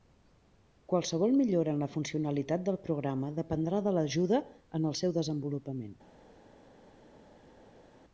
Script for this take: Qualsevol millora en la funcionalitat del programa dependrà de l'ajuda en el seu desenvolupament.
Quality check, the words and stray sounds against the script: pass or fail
pass